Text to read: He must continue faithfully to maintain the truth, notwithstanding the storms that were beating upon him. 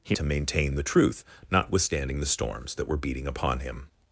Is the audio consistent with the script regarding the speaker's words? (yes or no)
no